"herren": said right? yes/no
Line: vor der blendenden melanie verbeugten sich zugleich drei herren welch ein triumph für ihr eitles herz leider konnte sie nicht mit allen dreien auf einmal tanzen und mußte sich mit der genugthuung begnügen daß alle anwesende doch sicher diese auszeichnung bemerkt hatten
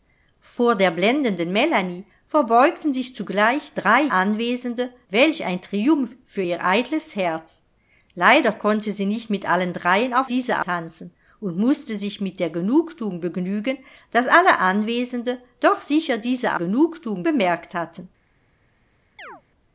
no